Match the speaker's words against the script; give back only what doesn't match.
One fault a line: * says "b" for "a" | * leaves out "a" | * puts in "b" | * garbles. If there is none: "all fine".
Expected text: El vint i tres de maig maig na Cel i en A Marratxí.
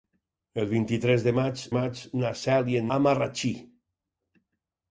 all fine